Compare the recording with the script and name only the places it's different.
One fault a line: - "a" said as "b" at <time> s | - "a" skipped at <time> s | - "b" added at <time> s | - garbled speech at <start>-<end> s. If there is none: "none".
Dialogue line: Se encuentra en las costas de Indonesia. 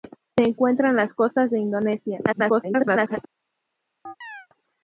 - garbled speech at 2.3-3.2 s